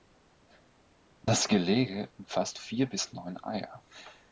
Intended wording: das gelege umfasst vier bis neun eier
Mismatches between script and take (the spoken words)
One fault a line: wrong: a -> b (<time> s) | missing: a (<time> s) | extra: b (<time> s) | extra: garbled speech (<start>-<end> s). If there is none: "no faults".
no faults